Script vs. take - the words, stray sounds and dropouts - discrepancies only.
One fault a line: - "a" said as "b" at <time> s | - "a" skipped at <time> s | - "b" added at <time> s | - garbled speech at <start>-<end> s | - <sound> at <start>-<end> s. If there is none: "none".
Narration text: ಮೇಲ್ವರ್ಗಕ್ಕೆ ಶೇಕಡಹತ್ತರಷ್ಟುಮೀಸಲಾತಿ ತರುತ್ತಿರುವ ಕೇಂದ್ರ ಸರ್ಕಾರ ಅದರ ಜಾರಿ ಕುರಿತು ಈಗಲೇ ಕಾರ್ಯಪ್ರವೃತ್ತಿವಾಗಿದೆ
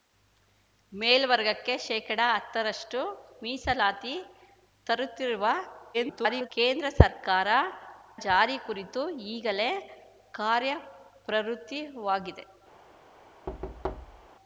- garbled speech at 5.9-6.5 s
- "ಅದರ" skipped at 7.5 s
- thud at 13.5-14.3 s